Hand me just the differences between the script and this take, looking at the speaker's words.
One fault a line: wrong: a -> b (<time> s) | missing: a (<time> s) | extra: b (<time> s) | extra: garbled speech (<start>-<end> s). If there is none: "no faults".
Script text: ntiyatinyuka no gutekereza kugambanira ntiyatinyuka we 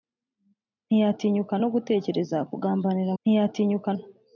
no faults